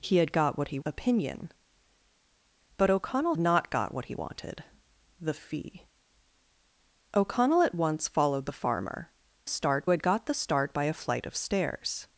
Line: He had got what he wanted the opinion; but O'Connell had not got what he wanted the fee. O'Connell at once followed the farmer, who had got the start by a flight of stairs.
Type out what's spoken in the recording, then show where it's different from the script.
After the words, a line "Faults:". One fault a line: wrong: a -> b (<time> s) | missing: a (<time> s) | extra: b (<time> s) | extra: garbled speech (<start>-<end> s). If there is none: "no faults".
He had got what he opinion; but O'Connell not got what he wanted the fee. O'Connell at once followed the farmer, start had got the start by a flight of stairs.
Faults:
missing: wanted the (0.8 s)
missing: had (3.4 s)
wrong: who -> start (9.5 s)